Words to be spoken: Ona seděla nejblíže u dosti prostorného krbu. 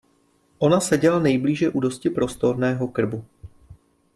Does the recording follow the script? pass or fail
pass